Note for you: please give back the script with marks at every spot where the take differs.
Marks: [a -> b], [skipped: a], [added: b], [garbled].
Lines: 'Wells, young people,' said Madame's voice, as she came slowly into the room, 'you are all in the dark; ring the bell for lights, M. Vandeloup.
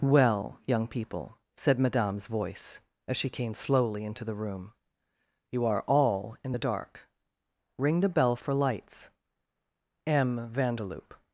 ['Wells, -> Well] young people,' said Madame's voice, as she came slowly into the room, 'you are all in the dark; ring the bell for lights, M. Vandeloup.